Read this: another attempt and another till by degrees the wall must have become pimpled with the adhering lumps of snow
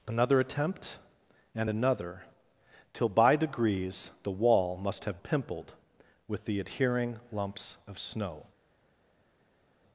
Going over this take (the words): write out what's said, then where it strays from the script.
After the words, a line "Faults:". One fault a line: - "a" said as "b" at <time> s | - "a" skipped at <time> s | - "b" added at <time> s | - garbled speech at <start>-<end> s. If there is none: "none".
another attempt and another till by degrees the wall must have pimpled with the adhering lumps of snow
Faults:
- "become" skipped at 5.2 s